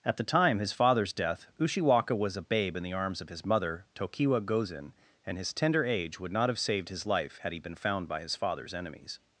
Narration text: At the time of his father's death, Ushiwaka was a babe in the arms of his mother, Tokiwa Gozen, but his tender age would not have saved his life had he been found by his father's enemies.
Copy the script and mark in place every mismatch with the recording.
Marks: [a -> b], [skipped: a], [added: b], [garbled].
At the time [skipped: of] his father's death, Ushiwaka was a babe in the arms of his mother, Tokiwa Gozen, [but -> and] his tender age would not have saved his life had he been found by his father's enemies.